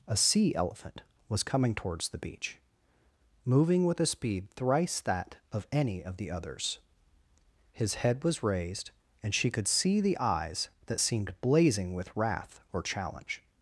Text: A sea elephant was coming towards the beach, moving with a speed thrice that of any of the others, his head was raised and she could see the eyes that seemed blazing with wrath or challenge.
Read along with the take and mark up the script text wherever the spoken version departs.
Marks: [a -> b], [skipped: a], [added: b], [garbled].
A sea elephant was coming towards the beach, moving with a speed thrice that of any of the others, his head was raised and she could see the eyes that seemed blazing with wrath or challenge.